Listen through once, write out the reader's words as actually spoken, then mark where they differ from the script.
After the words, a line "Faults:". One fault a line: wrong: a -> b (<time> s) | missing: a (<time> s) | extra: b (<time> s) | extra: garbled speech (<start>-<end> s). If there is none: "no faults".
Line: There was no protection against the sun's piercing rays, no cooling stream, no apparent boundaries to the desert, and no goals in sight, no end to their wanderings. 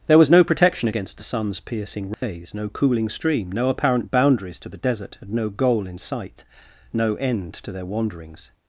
There was no protection against the sun's piercing rays, no cooling stream, no apparent boundaries to the desert, and no goal in sight, no end to their wanderings.
Faults:
wrong: goals -> goal (5.5 s)